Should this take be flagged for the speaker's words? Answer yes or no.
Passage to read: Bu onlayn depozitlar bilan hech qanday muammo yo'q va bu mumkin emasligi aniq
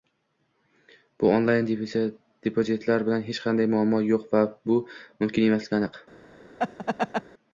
no